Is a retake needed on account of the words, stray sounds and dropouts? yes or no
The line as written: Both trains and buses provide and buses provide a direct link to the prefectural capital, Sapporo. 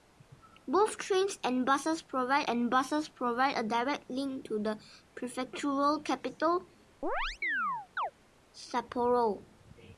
yes